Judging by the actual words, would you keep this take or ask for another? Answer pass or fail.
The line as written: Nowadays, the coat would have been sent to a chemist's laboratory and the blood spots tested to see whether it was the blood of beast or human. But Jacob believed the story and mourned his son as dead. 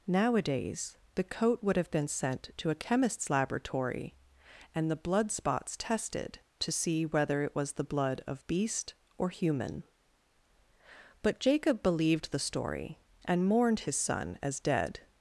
pass